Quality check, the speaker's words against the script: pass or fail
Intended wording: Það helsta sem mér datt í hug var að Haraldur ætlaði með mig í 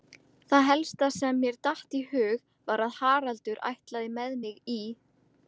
pass